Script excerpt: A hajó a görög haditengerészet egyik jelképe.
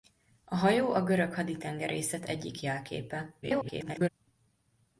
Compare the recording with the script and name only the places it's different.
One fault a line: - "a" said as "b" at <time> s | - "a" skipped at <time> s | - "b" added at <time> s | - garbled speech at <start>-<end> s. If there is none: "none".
- garbled speech at 3.4-4.1 s